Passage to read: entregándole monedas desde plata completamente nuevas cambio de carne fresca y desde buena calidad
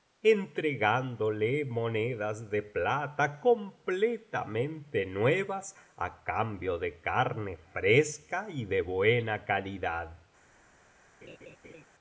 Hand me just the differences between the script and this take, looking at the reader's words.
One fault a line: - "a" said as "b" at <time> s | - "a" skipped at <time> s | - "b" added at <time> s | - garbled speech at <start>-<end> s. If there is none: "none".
- "desde" said as "de" at 2.5 s
- "á" added at 6.0 s
- "desde" said as "de" at 8.6 s